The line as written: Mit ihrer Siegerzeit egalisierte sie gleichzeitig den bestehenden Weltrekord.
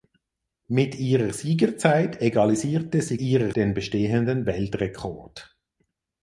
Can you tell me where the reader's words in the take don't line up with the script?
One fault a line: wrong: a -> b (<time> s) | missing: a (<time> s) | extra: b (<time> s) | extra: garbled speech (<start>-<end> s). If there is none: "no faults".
wrong: gleichzeitig -> ihrer (3.2 s)